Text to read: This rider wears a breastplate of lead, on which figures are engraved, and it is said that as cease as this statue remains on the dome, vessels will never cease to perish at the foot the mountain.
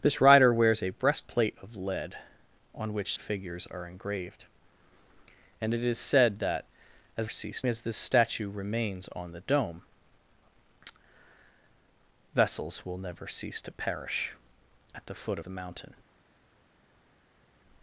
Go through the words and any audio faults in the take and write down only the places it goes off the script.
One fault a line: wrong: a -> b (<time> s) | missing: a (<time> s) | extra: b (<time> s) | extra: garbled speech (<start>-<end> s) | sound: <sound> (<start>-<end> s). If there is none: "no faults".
no faults